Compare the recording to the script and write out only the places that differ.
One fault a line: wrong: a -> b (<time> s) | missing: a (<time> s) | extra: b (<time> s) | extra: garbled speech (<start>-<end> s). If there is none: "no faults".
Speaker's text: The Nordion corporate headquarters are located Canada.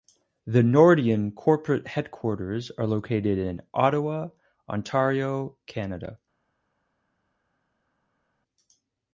extra: in Ottawa Ontario (3.4 s)